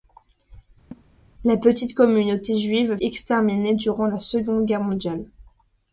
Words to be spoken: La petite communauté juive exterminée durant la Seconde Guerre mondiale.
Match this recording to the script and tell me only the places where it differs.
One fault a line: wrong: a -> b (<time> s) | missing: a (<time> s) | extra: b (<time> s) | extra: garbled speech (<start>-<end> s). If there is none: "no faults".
no faults